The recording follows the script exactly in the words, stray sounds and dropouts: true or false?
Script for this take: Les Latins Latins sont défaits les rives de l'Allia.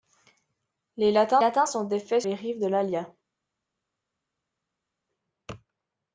true